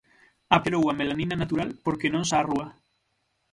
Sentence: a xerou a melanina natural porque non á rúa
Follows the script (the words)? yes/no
yes